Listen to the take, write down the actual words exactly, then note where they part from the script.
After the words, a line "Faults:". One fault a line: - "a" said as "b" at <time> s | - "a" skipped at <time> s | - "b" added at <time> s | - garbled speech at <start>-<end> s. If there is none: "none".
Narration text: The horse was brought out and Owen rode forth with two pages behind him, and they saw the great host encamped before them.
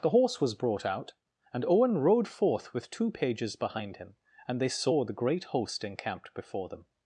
The horse was brought out and Owen rode forth with two pages behind him, and they saw the great host encamped before them.
Faults:
none